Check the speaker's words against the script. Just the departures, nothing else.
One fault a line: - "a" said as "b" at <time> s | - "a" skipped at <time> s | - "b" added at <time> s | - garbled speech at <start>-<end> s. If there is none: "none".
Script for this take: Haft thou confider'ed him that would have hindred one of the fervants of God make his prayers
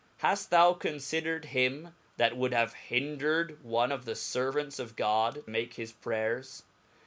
none